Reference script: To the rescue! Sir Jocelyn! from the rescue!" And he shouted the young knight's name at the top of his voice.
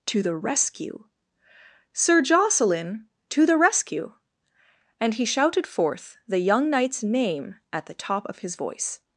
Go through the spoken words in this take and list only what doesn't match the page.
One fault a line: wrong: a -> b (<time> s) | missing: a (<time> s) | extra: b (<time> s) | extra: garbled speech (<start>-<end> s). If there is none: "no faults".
wrong: from -> to (3.3 s)
extra: forth (5.7 s)